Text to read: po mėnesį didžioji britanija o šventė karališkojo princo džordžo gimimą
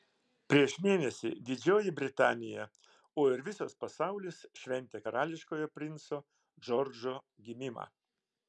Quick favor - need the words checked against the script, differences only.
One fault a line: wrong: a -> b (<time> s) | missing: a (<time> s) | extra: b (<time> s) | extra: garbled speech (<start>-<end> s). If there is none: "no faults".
wrong: po -> prieš (0.5 s)
extra: ir visas pasaulis (3.3 s)